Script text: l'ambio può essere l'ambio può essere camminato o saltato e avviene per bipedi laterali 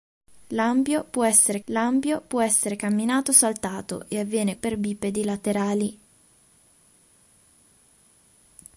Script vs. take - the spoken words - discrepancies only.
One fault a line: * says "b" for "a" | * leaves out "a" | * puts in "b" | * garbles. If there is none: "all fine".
all fine